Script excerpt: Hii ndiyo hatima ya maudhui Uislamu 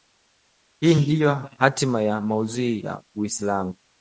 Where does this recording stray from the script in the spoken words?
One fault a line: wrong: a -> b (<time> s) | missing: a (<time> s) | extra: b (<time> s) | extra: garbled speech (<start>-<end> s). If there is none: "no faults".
extra: ya (2.8 s)